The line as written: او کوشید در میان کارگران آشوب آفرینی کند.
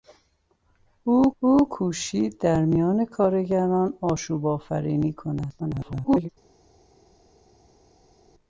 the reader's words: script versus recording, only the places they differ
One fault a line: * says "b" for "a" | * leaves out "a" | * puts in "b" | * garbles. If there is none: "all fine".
* puts in "او"
* garbles